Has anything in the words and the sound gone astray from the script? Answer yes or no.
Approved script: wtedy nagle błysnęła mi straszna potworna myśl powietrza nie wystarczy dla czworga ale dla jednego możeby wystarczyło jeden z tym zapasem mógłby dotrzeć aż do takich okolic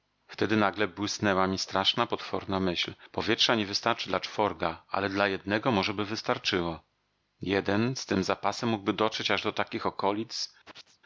yes